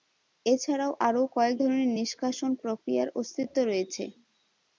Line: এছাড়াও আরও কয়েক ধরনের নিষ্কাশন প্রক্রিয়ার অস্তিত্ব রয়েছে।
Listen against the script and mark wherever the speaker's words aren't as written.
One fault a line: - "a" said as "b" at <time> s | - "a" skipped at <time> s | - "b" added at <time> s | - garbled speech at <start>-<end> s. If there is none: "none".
none